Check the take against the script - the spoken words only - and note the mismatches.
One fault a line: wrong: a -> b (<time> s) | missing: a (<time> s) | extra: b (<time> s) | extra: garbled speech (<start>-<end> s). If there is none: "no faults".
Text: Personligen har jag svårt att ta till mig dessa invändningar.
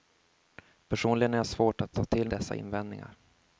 missing: mig (2.3 s)